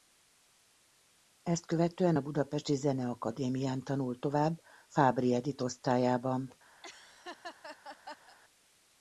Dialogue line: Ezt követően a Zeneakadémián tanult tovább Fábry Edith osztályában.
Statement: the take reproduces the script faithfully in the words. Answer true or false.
false